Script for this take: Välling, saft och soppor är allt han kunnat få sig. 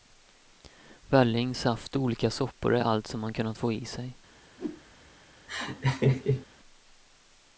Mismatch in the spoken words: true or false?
true